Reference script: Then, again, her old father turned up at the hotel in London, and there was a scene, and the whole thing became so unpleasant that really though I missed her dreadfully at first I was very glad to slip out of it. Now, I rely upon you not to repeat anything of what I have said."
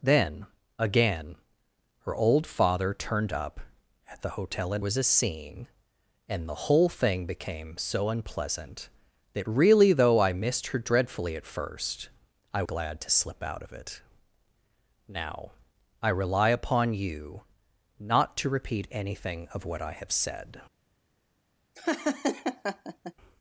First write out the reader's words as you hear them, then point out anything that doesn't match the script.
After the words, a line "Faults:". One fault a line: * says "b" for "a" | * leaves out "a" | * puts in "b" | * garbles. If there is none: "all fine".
Then, again, her old father turned up at the hotel in Was a scene, and the whole thing became so unpleasant that really though I missed her dreadfully at first I glad to slip out of it. Now, I rely upon you not to repeat anything of what I have said."
Faults:
* leaves out "London and there"
* leaves out "was very"